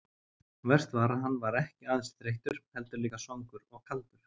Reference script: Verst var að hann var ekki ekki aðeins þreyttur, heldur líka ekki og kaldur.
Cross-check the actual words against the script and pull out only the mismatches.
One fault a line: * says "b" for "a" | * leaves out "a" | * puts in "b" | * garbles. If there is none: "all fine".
* leaves out "ekki"
* says "svangur" for "ekki"